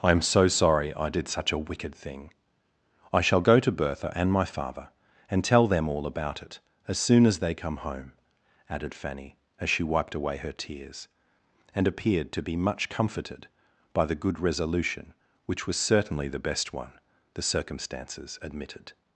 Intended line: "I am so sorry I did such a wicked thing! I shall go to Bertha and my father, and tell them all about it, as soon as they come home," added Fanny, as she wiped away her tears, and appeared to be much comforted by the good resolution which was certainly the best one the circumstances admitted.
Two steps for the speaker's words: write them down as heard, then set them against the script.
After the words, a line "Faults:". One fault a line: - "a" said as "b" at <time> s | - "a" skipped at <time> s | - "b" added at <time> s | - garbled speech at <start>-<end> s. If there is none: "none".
"I am so sorry I did such a wicked thing! I shall go to Bertha and my father, and tell them all about it, as soon as they come home," added Fanny, as she wiped away her tears, and appeared to be much comforted by the good resolution which was certainly the best one the circumstances admitted.
Faults:
none